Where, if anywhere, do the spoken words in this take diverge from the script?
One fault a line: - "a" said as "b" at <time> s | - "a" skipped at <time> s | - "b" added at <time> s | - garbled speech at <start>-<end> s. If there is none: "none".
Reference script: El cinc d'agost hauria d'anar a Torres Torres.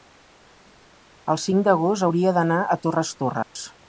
none